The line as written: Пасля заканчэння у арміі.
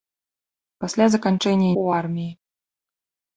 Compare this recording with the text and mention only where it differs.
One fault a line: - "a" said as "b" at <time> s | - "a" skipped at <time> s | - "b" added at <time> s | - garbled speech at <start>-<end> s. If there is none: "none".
none